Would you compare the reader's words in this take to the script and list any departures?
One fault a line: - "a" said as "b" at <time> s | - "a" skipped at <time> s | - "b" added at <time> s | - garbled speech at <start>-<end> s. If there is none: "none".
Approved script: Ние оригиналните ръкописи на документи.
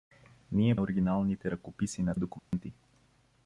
none